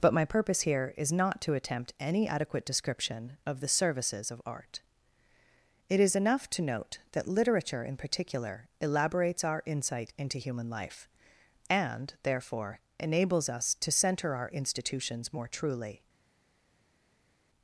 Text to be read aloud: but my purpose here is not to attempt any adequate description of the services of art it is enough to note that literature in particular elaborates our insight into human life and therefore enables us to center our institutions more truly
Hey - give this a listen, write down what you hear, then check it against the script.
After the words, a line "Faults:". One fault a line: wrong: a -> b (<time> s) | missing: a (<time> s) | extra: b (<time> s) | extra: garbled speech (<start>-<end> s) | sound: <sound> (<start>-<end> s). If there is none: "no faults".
but my purpose here is not to attempt any adequate description of the services of art it is enough to note that literature in particular elaborates our insight into human life and therefore enables us to center our institutions more truly
Faults:
no faults